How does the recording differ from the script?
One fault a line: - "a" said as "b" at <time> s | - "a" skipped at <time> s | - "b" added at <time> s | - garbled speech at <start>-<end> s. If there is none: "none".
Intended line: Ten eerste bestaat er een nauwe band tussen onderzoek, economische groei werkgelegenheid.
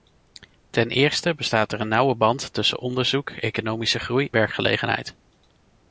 none